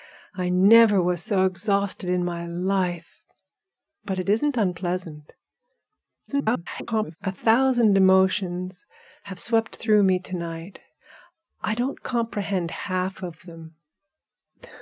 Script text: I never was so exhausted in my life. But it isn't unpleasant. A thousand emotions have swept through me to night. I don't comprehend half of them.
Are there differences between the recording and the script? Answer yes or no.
yes